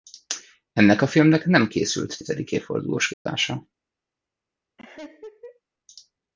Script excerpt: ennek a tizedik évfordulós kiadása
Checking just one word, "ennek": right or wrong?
right